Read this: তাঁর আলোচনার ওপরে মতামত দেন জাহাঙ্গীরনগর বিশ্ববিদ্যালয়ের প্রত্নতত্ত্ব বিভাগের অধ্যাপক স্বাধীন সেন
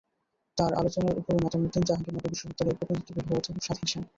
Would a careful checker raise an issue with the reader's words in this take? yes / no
no